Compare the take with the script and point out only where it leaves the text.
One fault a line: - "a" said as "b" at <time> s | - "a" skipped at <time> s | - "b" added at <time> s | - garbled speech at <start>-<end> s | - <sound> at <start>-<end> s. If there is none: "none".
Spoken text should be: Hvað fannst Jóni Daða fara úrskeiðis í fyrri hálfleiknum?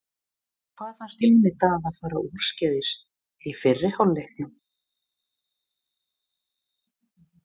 none